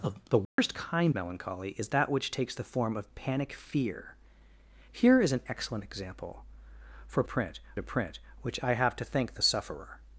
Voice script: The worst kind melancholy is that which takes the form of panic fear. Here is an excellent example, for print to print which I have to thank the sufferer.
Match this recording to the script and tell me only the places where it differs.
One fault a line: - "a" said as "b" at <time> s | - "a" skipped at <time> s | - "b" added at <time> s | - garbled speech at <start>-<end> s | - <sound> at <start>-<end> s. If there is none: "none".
- dropout at 0.4-0.6 s